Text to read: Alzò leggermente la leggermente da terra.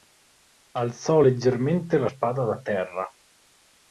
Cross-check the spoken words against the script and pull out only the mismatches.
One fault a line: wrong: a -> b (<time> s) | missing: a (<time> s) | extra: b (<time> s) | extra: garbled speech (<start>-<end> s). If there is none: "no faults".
wrong: leggermente -> spada (2.0 s)